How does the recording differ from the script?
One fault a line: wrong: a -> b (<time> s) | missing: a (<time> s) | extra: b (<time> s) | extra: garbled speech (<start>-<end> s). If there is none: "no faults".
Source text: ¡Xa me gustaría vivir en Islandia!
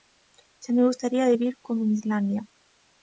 extra: como (1.6 s)